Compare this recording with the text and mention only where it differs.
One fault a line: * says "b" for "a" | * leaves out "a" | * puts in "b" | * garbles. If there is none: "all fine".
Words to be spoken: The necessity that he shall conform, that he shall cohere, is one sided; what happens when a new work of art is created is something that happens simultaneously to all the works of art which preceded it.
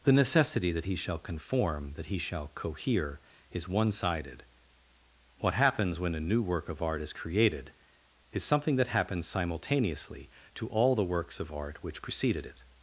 all fine